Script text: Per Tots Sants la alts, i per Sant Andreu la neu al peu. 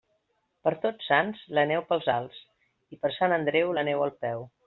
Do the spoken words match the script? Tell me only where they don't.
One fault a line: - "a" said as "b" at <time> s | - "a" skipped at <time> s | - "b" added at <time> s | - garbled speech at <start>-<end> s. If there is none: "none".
- "neu pels" added at 1.7 s